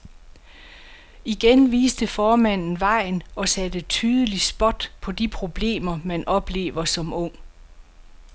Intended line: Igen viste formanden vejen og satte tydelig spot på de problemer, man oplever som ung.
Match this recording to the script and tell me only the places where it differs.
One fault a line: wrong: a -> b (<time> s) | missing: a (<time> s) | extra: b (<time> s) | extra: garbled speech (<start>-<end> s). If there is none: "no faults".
no faults